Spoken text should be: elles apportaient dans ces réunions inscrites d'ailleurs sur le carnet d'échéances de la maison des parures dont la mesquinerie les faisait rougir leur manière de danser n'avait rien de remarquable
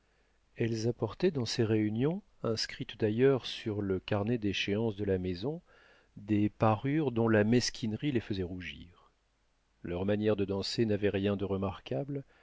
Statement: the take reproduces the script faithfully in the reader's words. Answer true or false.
true